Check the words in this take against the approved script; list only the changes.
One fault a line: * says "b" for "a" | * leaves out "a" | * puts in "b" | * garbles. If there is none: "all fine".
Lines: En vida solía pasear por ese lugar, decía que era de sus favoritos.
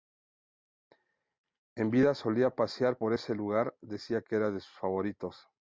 all fine